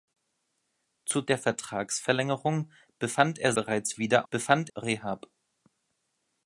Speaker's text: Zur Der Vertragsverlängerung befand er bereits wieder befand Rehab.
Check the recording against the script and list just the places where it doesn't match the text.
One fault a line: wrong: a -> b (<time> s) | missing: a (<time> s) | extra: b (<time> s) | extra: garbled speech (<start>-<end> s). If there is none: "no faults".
no faults